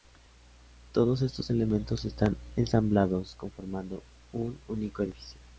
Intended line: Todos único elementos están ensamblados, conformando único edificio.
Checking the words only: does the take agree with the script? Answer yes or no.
no